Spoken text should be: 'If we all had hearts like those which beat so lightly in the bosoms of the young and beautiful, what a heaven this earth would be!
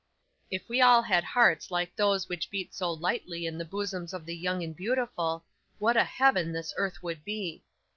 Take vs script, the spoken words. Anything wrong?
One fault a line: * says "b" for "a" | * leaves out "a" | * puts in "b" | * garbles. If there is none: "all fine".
all fine